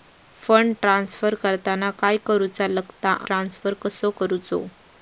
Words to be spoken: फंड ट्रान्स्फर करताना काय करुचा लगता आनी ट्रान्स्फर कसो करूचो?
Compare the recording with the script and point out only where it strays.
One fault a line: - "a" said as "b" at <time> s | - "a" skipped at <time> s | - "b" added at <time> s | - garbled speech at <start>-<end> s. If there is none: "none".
- "आनी" skipped at 3.1 s